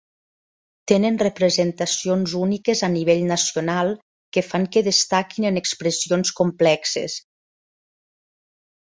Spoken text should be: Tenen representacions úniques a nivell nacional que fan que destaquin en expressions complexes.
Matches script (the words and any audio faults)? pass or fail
pass